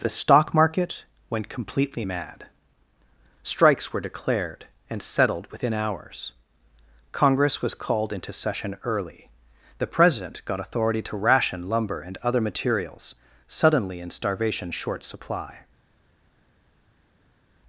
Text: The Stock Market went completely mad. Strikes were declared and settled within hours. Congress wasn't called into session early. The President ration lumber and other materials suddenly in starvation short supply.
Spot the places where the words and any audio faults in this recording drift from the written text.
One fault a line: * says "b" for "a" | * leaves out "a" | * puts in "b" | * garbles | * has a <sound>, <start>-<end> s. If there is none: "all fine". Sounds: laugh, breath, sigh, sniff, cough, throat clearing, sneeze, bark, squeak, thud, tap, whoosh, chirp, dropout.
* says "was" for "wasn't"
* puts in "got authority to"